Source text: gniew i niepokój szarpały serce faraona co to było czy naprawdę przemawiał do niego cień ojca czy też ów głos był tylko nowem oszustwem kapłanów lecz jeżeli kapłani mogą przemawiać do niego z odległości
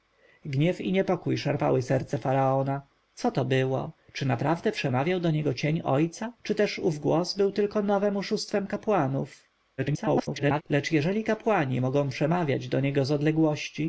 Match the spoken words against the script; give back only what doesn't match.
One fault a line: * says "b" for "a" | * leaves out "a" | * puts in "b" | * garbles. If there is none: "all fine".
* garbles